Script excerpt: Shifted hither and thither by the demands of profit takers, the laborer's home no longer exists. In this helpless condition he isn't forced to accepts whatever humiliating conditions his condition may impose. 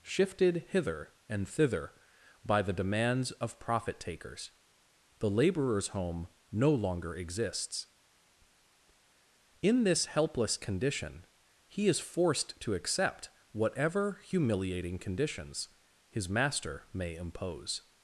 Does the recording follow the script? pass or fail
fail